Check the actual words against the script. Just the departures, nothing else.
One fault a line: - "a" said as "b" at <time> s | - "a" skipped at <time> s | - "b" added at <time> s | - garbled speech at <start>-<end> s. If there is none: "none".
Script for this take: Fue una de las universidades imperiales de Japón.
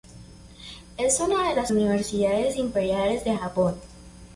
- "Fue" said as "Es" at 1.0 s